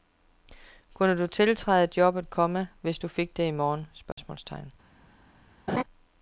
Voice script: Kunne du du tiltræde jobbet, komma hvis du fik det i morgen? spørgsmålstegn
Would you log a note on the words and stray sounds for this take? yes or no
yes